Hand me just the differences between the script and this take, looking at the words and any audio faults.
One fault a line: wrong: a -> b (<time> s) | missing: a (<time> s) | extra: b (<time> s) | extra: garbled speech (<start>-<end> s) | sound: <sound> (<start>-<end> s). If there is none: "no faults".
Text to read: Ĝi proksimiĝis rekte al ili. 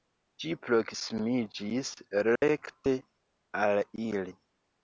sound: dropout (2.4-2.4 s)